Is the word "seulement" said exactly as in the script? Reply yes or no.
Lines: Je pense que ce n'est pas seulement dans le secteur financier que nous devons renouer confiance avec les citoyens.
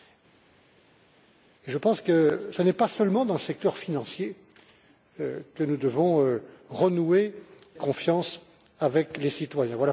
yes